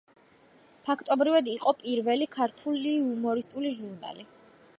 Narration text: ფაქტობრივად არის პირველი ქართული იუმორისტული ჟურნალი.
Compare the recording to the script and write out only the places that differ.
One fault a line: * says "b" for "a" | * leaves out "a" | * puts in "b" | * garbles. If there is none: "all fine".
* says "იყო" for "არის"